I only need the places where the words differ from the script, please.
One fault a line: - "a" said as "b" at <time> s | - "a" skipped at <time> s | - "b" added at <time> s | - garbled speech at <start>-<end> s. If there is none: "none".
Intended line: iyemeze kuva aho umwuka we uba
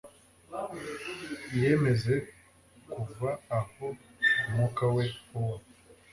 none